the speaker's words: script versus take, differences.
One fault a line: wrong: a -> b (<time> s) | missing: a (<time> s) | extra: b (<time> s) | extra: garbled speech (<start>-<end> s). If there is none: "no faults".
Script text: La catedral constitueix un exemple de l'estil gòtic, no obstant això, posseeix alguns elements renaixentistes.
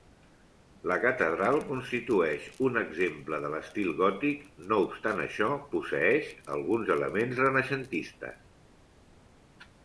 no faults